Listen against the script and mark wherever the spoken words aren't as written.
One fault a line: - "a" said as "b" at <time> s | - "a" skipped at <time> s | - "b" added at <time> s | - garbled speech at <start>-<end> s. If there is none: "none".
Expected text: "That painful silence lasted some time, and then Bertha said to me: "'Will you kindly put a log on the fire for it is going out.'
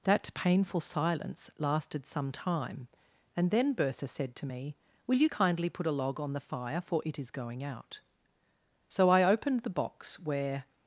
- "So I opened the box where" added at 8.9 s